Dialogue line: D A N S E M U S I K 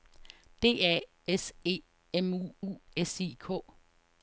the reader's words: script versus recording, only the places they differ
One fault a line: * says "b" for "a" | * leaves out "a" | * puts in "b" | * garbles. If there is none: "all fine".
* leaves out "N"
* puts in "U"